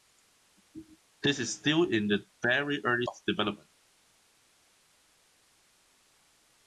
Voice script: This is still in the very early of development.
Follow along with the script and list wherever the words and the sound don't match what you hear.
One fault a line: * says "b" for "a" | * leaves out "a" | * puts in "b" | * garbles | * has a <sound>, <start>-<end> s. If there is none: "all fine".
all fine